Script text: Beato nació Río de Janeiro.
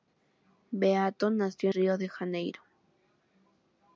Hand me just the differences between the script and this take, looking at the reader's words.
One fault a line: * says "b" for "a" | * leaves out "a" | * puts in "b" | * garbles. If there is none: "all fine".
all fine